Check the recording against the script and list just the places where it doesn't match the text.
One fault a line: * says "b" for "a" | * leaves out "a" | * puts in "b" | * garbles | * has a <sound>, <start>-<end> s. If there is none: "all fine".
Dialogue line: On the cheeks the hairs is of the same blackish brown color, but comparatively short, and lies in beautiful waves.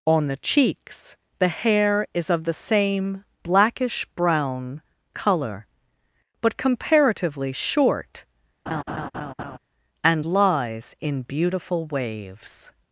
* says "hair" for "hairs"
* has a laugh, 8.7-9.6 s